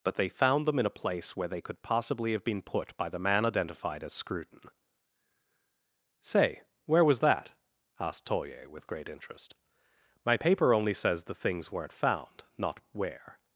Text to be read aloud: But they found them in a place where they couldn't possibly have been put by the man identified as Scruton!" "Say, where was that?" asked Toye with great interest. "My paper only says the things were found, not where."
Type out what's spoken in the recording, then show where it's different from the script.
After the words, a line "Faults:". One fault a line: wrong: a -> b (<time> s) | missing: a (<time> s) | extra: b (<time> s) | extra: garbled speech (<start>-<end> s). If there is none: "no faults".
But they found them in a place where they could possibly have been put by the man identified as Scruton!" "Say, where was that?" asked Toye with great interest. "My paper only says the things weren't found, not where."
Faults:
wrong: couldn't -> could (1.6 s)
wrong: were -> weren't (11.7 s)